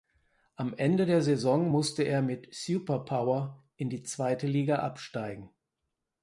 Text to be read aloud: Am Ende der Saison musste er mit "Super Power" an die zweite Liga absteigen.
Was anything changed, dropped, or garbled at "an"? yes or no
yes